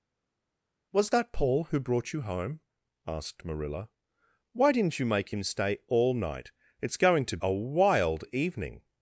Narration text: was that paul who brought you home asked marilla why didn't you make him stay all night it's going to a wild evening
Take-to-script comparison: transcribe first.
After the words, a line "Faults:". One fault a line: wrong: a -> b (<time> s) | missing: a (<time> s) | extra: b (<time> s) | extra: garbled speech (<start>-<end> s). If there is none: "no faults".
was that paul who brought you home asked marilla why didn't you make him stay all night it's going to a wild evening
Faults:
no faults